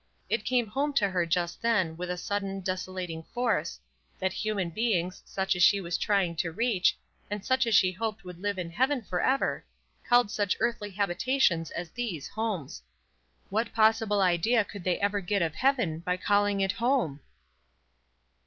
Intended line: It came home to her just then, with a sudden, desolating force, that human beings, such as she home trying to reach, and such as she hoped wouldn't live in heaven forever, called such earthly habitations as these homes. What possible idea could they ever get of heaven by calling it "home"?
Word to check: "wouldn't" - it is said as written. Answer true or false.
false